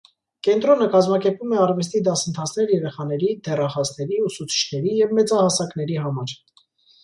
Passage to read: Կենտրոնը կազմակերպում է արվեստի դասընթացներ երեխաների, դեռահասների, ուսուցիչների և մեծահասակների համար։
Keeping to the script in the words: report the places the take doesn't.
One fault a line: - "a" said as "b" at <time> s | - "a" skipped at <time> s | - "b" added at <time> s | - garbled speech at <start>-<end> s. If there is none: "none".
none